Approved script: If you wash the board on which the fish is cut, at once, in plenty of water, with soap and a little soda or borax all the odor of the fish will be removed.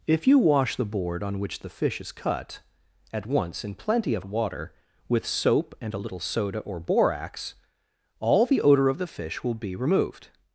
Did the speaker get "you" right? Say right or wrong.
right